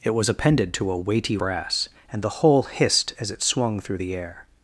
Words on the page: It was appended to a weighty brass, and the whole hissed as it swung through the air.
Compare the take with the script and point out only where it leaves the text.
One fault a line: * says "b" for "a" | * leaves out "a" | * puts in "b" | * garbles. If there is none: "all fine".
all fine